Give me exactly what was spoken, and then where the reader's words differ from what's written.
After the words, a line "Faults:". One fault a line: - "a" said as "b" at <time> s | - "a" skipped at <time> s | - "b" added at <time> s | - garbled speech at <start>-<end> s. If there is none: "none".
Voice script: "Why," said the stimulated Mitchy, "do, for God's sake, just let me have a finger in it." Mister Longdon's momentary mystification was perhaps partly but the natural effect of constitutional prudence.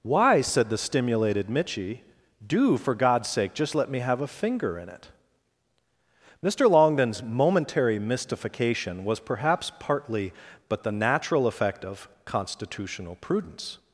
"Why," said the stimulated Mitchy, "do, for God's sake, just let me have a finger in it." Mister Longdon's momentary mystification was perhaps partly but the natural effect of constitutional prudence.
Faults:
none